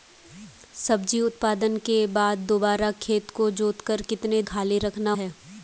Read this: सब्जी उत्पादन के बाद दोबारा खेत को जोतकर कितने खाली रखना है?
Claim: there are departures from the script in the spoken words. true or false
false